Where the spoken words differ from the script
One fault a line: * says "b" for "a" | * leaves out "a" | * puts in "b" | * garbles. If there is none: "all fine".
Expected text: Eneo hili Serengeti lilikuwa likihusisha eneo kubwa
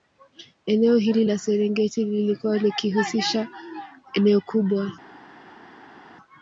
* puts in "la"